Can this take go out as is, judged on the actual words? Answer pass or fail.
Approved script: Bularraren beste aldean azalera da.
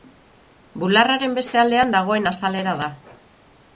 fail